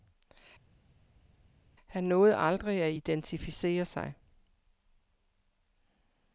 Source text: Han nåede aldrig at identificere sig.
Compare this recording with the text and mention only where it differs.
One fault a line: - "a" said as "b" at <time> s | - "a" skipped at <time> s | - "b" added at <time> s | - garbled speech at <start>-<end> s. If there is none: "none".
none